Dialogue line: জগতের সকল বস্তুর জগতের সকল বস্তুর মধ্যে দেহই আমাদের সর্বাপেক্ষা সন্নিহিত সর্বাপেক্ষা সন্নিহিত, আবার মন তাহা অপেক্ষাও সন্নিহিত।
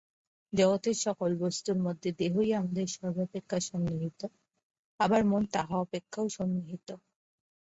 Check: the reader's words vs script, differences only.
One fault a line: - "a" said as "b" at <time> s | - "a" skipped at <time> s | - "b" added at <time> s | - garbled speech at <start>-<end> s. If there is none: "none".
- "জগতের সকল বস্তুর" skipped at 1.8 s
- "সর্বাপেক্ষা সন্নিহিত" skipped at 4.2 s